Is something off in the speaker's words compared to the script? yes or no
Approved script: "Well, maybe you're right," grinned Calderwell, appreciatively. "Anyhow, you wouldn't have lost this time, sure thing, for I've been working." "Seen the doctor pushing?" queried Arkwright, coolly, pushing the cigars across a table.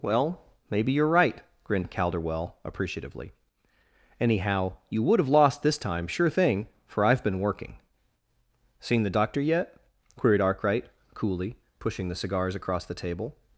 yes